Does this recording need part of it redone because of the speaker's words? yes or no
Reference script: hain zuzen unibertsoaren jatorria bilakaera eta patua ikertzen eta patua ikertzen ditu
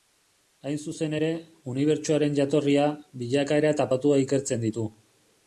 yes